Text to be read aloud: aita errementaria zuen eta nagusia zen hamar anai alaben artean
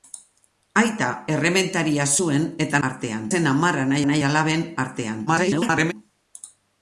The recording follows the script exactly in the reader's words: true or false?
false